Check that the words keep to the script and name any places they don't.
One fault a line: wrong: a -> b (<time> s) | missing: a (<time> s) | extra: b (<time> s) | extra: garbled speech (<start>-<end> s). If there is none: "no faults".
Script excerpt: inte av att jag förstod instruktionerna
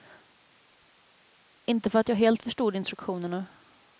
wrong: av -> för (1.9 s)
extra: helt (2.1 s)